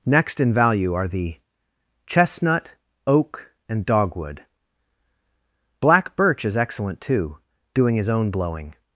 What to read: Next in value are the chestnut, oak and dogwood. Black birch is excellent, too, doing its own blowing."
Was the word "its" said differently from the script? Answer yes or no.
yes